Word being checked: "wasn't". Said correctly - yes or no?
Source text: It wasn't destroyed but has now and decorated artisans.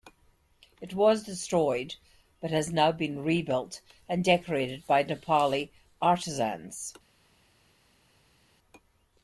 no